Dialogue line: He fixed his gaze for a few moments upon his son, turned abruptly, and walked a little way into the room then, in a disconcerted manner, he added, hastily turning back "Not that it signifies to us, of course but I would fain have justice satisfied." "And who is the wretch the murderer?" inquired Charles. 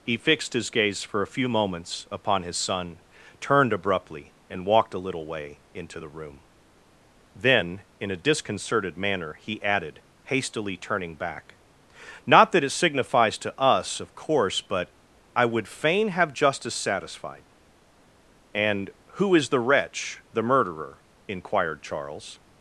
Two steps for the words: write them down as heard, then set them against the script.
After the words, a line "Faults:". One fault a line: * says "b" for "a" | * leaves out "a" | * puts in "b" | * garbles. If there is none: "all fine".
He fixed his gaze for a few moments upon his son, turned abruptly, and walked a little way into the room then, in a disconcerted manner, he added, hastily turning back "Not that it signifies to us, of course but I would fain have justice satisfied." "And who is the wretch the murderer?" inquired Charles.
Faults:
all fine